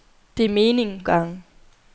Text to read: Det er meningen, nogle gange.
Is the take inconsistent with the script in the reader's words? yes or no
yes